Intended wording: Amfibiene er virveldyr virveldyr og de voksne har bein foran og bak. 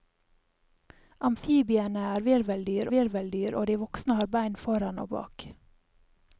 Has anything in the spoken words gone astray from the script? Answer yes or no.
no